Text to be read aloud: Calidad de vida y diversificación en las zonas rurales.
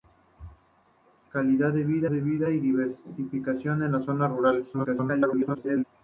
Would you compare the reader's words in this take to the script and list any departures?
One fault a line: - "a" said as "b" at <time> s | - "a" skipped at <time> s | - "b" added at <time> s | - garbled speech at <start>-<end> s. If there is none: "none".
- "de vida" added at 2.1 s
- garbled speech at 4.7-5.8 s